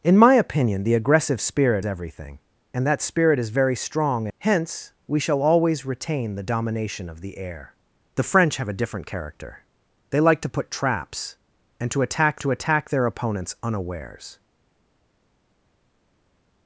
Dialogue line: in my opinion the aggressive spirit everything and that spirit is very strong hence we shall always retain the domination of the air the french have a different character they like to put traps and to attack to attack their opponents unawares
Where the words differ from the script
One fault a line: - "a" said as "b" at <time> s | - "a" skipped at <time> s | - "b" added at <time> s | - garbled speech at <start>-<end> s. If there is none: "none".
none